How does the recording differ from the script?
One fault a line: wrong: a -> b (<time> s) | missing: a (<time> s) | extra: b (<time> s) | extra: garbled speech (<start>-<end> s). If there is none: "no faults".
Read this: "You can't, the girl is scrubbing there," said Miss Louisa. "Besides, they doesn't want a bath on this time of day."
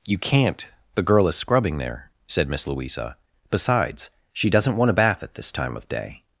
wrong: they -> she (4.3 s)
wrong: on -> at (5.2 s)